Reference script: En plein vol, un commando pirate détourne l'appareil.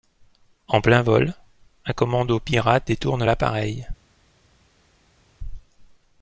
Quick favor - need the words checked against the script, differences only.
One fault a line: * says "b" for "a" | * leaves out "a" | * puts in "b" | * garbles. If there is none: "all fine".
all fine